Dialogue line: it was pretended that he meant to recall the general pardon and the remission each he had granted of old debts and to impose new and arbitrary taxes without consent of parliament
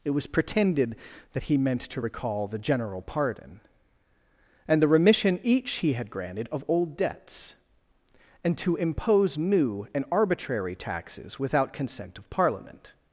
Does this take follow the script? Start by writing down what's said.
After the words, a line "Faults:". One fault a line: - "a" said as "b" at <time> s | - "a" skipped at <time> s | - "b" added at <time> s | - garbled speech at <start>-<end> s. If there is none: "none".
it was pretended that he meant to recall the general pardon and the remission each he had granted of old debts and to impose new and arbitrary taxes without consent of parliament
Faults:
none